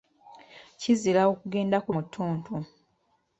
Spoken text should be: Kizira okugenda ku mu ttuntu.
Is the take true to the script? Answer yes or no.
yes